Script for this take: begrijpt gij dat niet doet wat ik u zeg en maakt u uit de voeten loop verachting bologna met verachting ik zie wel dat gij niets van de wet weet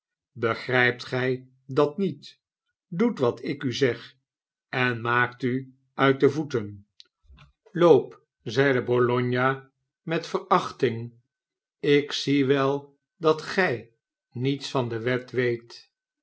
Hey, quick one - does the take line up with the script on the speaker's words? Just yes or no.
no